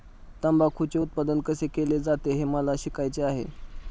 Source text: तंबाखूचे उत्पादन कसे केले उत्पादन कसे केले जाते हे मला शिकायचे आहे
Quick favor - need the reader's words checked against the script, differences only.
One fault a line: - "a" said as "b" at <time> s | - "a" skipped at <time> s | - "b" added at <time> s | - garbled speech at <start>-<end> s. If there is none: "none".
- "उत्पादन कसे केले" skipped at 2.0 s